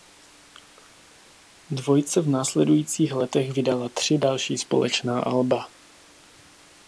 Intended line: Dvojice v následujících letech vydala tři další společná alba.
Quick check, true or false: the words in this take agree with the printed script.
true